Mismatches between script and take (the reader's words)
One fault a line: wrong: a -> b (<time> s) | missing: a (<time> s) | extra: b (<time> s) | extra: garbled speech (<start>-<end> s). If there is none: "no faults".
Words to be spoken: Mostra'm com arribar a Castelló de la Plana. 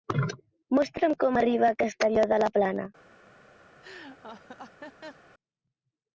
no faults